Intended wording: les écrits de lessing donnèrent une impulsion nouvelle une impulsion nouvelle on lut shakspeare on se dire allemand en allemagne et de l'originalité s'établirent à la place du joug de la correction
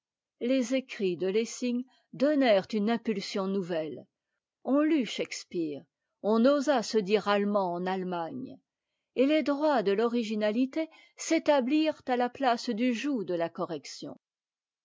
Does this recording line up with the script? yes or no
no